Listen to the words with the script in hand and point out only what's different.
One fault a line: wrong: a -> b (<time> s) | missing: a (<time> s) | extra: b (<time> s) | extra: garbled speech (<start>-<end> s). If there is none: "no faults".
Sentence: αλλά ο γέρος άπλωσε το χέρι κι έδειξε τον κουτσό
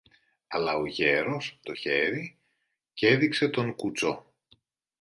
missing: άπλωσε (1.6 s)